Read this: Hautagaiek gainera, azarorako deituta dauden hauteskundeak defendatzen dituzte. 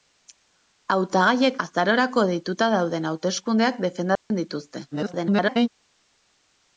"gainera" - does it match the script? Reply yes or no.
no